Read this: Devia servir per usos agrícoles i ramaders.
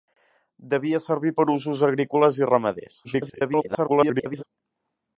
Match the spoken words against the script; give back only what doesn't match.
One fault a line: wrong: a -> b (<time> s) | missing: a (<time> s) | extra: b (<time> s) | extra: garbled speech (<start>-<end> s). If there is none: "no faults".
extra: garbled speech (3.0-4.4 s)